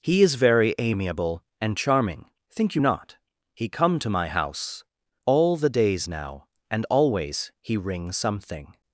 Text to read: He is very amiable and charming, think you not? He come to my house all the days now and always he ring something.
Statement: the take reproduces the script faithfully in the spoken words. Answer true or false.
true